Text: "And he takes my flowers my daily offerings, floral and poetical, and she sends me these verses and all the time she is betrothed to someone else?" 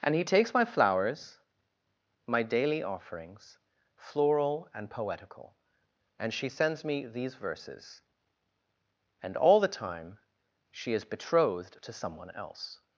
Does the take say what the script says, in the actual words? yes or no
yes